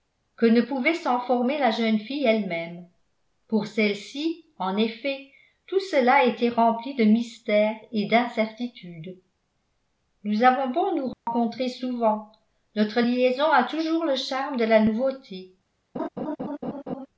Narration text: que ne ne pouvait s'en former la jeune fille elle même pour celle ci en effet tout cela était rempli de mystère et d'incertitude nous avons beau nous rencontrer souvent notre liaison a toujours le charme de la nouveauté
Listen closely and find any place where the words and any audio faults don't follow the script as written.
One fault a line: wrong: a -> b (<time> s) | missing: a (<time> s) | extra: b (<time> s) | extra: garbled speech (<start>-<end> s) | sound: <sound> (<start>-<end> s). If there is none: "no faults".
missing: ne (0.6 s)
sound: dropout (11.1-11.3 s)
sound: laugh (15.9-17.1 s)